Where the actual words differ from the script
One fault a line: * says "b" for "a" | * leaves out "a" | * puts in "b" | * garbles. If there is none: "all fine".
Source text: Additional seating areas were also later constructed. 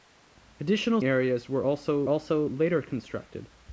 * leaves out "seating"
* puts in "also"